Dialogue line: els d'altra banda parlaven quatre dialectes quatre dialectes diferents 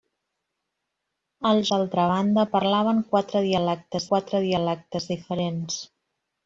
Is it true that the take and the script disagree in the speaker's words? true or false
false